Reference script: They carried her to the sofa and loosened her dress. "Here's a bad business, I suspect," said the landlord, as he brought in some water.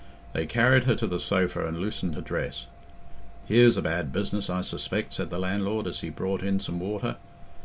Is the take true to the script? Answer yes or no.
yes